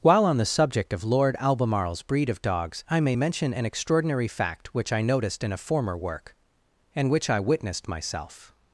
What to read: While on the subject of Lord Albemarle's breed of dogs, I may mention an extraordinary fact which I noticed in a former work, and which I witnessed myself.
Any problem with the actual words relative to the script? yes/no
no